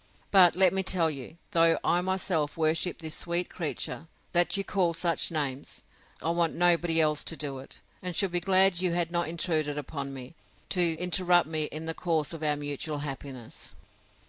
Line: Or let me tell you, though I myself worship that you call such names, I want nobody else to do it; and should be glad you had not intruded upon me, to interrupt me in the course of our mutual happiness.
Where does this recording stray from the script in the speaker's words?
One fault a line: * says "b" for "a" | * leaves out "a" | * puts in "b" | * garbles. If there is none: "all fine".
* says "But" for "Or"
* puts in "this sweet creature"